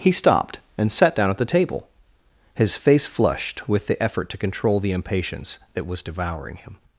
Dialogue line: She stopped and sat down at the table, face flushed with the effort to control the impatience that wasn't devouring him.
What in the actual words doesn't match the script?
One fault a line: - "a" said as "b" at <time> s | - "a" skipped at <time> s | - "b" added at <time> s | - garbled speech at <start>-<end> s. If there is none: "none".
- "She" said as "He" at 0.0 s
- "his" added at 2.5 s
- "wasn't" said as "was" at 5.9 s